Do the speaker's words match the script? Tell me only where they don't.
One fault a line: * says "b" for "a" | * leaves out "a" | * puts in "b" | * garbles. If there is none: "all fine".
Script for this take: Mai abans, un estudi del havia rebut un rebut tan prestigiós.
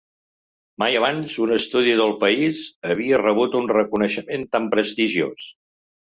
* puts in "país"
* says "reconeixement" for "rebut"